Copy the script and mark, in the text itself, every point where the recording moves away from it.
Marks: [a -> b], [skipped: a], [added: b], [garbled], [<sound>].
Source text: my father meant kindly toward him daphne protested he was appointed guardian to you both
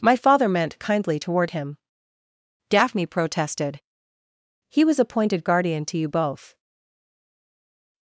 my father meant kindly toward him daphne protested he was appointed guardian to you both